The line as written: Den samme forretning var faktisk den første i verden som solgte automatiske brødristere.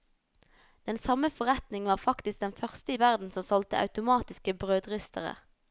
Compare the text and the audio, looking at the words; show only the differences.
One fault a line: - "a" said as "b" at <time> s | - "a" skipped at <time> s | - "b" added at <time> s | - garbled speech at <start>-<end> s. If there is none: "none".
none